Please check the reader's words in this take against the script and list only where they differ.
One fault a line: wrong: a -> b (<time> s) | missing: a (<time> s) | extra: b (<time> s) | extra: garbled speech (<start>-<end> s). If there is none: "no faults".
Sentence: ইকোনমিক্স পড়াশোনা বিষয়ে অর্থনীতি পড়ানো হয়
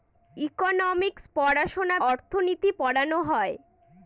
missing: বিষয়ে (2.0 s)